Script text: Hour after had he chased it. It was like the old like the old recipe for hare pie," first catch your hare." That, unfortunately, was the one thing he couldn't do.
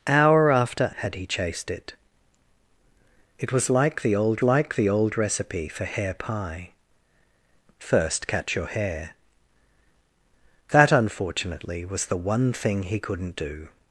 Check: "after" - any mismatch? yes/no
no